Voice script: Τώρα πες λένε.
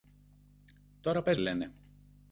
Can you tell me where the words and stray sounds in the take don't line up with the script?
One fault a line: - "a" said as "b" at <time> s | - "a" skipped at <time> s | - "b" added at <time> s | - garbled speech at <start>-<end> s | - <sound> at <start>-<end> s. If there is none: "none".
none